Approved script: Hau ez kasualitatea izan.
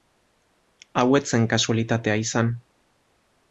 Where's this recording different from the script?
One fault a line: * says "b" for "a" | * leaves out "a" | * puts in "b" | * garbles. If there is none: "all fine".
* puts in "zen"